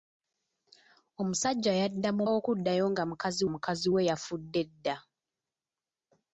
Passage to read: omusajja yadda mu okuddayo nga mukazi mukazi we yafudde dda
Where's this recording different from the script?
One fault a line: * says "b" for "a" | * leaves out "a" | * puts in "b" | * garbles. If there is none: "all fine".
all fine